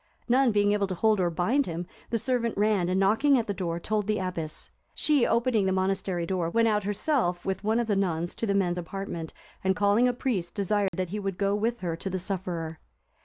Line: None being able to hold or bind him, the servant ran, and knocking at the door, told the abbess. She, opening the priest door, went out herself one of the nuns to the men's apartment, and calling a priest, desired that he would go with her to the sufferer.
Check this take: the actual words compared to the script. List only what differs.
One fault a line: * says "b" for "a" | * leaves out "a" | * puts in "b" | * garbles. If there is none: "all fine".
* says "monastery" for "priest"
* puts in "with"